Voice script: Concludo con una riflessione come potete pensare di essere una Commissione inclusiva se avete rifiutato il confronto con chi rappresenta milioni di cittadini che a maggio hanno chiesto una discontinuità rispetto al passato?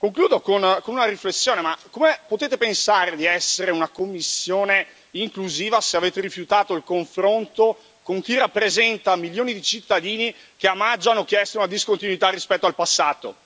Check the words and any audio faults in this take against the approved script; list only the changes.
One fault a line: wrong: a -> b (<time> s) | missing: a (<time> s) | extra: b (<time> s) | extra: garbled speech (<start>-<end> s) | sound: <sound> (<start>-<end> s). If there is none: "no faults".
no faults